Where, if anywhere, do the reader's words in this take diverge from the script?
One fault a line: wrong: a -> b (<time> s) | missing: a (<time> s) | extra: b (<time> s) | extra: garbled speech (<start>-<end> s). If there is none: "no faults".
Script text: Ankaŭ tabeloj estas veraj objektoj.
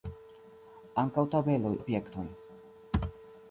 missing: estas veraj (1.8 s)